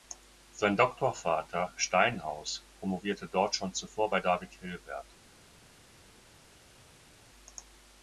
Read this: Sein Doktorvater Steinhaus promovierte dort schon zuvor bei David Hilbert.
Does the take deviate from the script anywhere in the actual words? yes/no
no